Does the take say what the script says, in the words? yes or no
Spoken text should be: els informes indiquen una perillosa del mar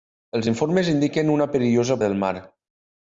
yes